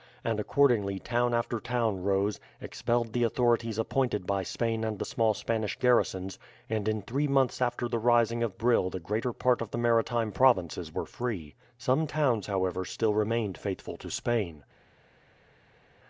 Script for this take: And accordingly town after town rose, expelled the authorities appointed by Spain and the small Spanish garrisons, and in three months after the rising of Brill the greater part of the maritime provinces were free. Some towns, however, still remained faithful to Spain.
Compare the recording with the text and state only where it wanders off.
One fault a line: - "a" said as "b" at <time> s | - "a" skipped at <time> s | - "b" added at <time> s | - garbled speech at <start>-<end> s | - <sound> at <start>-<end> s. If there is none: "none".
none